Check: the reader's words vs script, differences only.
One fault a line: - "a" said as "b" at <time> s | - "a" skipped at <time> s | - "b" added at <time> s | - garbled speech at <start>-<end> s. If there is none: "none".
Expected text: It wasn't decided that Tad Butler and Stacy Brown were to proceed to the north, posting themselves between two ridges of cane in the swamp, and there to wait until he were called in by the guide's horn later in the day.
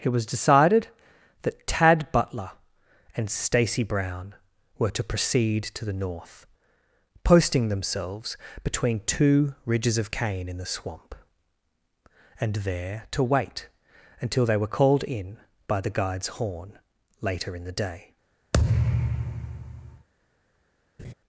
- "wasn't" said as "was" at 0.1 s
- "he" said as "they" at 14.4 s